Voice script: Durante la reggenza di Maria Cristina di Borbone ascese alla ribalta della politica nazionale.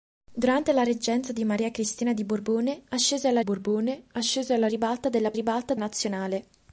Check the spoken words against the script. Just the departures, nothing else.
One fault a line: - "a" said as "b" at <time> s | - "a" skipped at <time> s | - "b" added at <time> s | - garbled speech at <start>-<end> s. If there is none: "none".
- "Borbone ascese alla" added at 3.4 s
- "politica" said as "ribalta" at 5.3 s